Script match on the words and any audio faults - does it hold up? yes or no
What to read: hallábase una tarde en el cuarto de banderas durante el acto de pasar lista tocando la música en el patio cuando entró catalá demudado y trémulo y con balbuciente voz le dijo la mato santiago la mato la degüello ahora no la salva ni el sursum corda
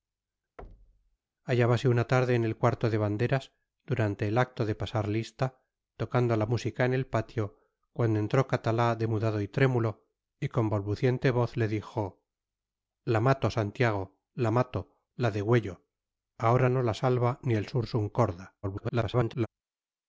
no